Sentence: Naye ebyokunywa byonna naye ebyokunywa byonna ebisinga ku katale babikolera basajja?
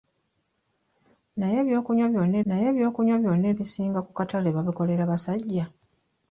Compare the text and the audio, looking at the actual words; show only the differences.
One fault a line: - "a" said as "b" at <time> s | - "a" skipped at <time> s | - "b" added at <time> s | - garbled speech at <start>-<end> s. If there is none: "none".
none